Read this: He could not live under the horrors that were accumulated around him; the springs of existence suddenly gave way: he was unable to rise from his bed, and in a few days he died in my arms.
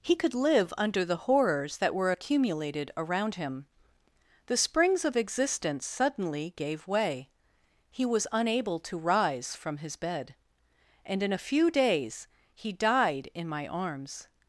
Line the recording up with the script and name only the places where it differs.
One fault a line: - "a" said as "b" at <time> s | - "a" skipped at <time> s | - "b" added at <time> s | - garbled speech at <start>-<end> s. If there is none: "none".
- "not" skipped at 0.3 s